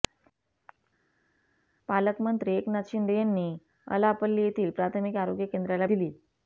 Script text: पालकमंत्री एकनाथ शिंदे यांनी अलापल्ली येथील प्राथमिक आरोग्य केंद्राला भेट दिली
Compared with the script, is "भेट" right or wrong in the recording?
wrong